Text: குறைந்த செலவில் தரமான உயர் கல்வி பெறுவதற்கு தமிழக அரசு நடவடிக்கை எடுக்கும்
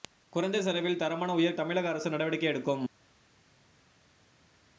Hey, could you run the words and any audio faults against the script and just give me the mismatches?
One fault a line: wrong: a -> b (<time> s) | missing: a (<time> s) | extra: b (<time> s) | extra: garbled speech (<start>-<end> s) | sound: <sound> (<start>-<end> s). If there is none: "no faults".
missing: கல்வி பெறுவதற்கு (1.6 s)